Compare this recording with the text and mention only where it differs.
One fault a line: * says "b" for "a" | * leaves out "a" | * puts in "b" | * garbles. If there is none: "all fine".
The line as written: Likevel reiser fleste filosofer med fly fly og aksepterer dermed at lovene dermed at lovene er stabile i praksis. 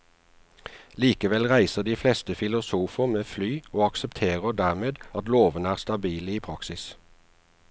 * puts in "de"
* leaves out "fly"
* leaves out "dermed at lovene"